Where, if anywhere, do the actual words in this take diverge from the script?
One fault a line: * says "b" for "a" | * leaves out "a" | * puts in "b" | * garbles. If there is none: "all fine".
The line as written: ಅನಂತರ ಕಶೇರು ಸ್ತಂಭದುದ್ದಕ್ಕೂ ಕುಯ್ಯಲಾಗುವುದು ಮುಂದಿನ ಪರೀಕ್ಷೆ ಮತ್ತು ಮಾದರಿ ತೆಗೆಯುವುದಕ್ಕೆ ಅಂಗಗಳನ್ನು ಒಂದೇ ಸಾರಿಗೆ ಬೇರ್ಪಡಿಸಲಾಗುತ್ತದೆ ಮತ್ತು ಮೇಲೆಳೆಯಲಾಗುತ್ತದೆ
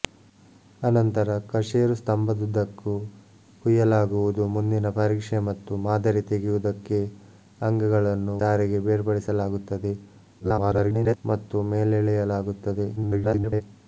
* leaves out "ಒಂದೇ"
* garbles
* garbles